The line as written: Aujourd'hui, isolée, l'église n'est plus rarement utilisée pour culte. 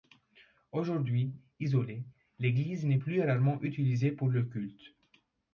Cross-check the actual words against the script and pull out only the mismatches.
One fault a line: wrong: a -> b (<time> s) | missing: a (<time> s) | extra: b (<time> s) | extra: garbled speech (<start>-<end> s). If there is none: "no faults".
extra: le (4.3 s)